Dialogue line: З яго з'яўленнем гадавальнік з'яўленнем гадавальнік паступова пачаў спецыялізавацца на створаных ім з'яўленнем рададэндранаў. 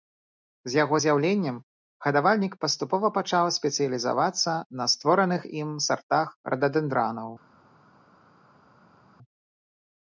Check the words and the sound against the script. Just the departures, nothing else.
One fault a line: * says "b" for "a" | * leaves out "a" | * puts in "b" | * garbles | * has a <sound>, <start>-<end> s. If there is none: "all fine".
* leaves out "з'яўленнем гадавальнік"
* says "сартах" for "з'яўленнем"